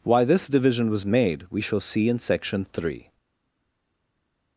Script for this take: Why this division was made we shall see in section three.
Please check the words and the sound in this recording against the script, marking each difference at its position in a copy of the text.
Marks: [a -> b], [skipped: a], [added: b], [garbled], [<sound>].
Why this division was made we shall see in section three.